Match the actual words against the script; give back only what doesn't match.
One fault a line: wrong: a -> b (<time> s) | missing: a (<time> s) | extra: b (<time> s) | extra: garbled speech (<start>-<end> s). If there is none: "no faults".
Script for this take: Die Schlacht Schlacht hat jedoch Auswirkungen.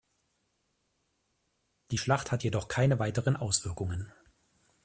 missing: Schlacht (2.3 s)
extra: keine weiteren (2.7 s)